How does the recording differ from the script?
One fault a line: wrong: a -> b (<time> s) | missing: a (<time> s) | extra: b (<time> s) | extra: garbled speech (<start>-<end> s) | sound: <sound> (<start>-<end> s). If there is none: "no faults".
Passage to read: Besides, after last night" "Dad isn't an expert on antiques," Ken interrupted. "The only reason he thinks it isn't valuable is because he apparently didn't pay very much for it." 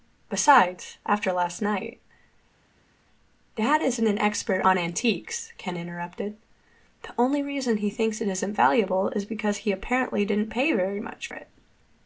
missing: for (11.3 s)